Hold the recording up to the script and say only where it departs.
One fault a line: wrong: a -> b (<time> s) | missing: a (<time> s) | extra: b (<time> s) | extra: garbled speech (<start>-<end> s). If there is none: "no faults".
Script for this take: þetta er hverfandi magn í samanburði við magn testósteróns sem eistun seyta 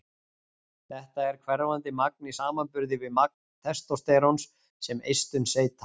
no faults